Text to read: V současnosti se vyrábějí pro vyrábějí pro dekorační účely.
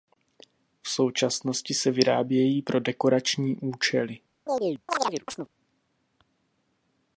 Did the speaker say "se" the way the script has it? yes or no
yes